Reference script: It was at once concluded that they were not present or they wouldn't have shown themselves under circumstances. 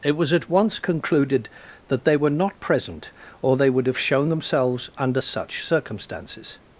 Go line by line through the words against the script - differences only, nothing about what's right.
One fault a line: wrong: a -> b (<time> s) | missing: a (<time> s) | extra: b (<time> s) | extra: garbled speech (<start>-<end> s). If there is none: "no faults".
wrong: wouldn't -> would (3.7 s)
extra: such (5.2 s)